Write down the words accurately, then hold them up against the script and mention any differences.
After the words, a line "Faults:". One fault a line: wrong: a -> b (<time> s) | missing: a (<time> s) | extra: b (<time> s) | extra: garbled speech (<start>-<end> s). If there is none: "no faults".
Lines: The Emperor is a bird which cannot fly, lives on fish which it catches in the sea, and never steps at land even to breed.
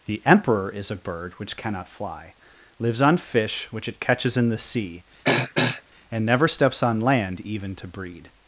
The Emperor is a bird which cannot fly, lives on fish which it catches in the sea, and never steps on land even to breed.
Faults:
wrong: at -> on (6.8 s)